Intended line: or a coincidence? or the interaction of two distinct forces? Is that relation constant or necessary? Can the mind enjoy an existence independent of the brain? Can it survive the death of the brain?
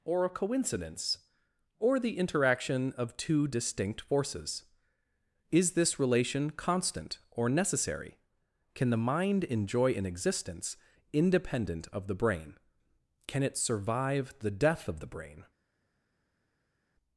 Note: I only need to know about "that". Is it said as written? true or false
false